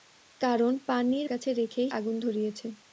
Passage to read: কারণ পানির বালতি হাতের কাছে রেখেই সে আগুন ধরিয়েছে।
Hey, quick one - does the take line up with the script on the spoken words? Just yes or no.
no